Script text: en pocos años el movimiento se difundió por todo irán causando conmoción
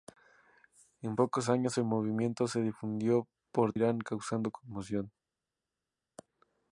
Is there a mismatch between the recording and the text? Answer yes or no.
yes